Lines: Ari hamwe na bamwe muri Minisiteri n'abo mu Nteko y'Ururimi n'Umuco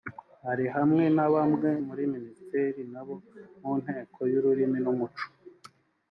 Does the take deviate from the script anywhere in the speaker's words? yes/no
no